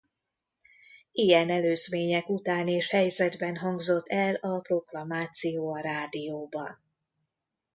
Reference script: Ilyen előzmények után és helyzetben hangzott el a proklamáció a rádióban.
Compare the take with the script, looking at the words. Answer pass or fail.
pass